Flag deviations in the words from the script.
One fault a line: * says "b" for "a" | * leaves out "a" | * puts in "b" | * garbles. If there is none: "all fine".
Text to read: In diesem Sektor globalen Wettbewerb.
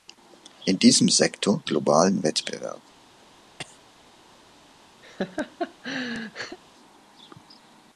all fine